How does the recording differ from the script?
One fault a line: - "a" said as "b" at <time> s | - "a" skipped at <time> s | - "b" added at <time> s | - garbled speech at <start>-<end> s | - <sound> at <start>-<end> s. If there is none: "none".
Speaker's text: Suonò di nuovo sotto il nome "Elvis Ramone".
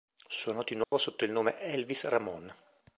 - dropout at 0.8-0.9 s